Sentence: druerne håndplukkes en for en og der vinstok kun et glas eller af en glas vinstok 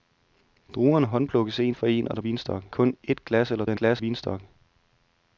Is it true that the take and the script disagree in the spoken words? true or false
false